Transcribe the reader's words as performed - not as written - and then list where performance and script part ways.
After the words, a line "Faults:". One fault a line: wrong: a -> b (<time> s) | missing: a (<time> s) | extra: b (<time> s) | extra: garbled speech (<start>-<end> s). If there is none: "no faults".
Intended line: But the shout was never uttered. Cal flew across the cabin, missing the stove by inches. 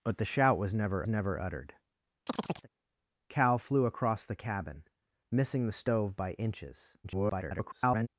But the shout was never never uttered. Cal flew across the cabin, missing the stove by inches. [garbled]
Faults:
extra: never (1.1 s)
extra: garbled speech (7.0-8.1 s)